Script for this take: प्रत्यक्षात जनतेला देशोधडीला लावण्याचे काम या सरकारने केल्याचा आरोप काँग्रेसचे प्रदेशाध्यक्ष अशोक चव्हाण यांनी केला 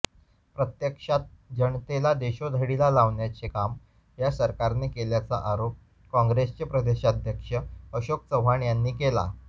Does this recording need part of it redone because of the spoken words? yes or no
no